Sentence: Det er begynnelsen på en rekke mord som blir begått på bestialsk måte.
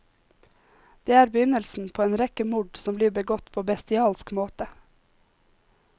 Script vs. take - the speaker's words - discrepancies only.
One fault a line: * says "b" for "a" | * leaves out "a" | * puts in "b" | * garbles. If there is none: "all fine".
all fine